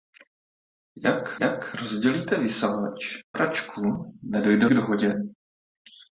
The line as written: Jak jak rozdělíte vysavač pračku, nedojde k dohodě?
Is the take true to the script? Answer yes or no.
yes